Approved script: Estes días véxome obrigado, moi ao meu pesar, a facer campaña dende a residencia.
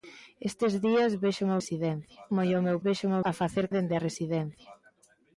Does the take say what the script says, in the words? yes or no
no